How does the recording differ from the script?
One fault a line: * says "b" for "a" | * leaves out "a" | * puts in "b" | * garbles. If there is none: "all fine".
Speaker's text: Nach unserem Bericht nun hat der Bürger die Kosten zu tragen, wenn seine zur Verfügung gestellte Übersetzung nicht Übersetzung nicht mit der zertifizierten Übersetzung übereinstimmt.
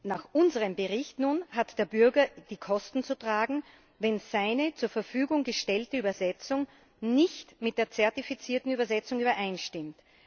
* leaves out "Übersetzung nicht"